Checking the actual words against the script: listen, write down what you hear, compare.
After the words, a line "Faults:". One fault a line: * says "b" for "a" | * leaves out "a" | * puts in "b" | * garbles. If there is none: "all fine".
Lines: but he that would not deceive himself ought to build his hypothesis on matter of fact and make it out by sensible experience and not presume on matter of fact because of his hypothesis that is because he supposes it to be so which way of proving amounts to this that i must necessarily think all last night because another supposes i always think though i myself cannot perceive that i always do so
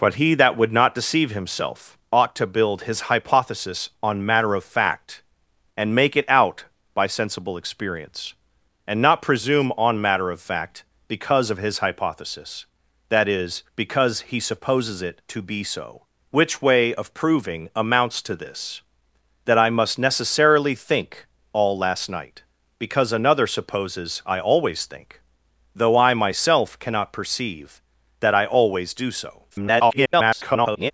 but he that would not deceive himself ought to build his hypothesis on matter of fact and make it out by sensible experience and not presume on matter of fact because of his hypothesis that is because he supposes it to be so which way of proving amounts to this that i must necessarily think all last night because another supposes i always think though i myself cannot perceive that i always do so [garbled]
Faults:
* garbles